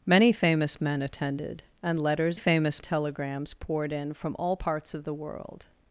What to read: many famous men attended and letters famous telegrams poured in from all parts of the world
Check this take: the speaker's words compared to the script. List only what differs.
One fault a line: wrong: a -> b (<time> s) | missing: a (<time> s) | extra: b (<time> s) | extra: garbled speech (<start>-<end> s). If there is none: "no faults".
no faults